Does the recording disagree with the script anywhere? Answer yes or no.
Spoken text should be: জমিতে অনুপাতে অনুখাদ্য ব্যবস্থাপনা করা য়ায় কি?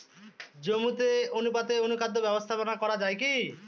no